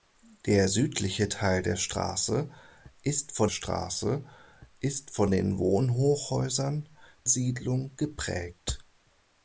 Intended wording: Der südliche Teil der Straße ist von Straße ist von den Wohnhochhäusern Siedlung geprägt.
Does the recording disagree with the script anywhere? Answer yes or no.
no